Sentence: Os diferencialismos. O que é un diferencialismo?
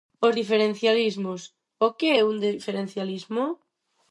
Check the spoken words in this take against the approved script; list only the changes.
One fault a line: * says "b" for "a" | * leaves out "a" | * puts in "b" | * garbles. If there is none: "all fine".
all fine